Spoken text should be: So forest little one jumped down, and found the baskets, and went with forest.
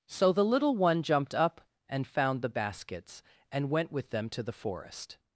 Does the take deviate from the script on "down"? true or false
true